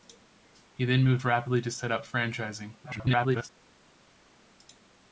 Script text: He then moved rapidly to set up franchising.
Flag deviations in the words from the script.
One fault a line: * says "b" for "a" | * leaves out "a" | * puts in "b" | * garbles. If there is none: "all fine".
* garbles